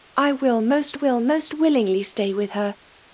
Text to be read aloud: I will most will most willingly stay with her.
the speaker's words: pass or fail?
pass